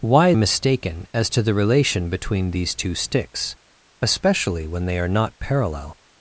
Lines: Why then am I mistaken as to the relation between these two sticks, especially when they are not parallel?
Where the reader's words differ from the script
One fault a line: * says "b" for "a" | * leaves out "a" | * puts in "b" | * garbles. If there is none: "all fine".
* leaves out "then am I"